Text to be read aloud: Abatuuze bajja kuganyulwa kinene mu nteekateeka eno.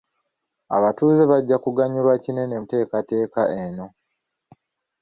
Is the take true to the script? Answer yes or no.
no